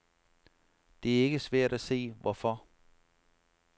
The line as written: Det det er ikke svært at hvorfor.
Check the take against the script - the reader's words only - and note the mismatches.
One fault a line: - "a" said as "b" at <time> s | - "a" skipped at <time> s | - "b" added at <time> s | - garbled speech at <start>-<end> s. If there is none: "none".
- "det" skipped at 1.2 s
- "se" added at 1.8 s